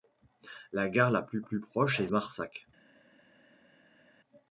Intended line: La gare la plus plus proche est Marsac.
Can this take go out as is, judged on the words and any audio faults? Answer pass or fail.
pass